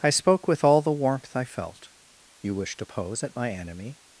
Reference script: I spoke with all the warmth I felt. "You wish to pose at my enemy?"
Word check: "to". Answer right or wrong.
right